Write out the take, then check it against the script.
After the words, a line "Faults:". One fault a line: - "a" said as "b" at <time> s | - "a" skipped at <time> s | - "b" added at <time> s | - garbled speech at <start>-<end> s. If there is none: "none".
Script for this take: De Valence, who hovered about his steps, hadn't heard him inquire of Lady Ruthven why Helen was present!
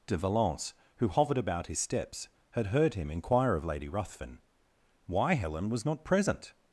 De Valence, who hovered about his steps, had heard him inquire of Lady Ruthven why Helen was not present!
Faults:
- "hadn't" said as "had" at 2.5 s
- "not" added at 5.9 s